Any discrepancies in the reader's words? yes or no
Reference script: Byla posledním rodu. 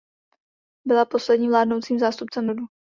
yes